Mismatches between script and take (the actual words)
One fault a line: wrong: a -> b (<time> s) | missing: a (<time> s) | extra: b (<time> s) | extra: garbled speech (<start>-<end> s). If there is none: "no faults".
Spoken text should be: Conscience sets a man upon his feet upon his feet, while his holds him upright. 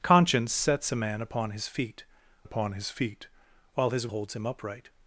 no faults